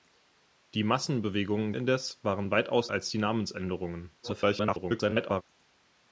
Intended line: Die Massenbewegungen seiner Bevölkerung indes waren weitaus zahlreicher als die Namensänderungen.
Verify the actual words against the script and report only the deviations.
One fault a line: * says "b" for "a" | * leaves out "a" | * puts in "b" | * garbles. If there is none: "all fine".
* leaves out "seiner Bevölkerung"
* leaves out "zahlreicher"
* garbles